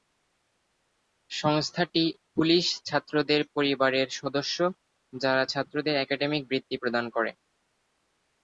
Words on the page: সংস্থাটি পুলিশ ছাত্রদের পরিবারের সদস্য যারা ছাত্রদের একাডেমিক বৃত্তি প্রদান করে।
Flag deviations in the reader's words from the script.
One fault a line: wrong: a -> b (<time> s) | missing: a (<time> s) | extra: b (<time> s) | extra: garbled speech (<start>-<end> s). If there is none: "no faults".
no faults